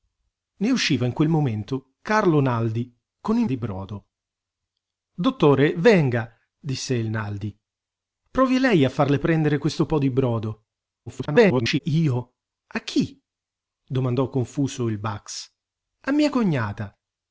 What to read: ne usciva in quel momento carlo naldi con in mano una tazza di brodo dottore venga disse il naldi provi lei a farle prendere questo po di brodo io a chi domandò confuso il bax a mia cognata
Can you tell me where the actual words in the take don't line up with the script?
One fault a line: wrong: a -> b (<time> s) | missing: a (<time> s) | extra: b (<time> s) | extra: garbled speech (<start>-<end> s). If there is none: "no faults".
missing: mano una tazza (3.5 s)
extra: garbled speech (11.1-11.8 s)